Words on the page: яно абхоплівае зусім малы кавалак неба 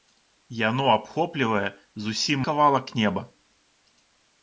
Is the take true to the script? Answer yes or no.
no